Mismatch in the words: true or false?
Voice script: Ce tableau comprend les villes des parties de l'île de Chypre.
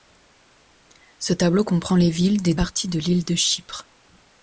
false